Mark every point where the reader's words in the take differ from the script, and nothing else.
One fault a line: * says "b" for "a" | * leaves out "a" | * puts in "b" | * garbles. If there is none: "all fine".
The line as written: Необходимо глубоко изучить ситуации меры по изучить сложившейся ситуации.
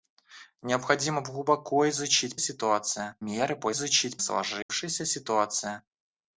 all fine